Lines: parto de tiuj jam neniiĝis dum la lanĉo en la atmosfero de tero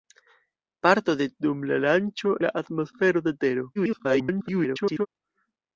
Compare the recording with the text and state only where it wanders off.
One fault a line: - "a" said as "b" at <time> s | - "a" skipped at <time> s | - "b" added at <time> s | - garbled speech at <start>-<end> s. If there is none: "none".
- "tiuj jam neniiĝis" skipped at 1.3 s
- "en" skipped at 2.4 s
- garbled speech at 3.7-5.1 s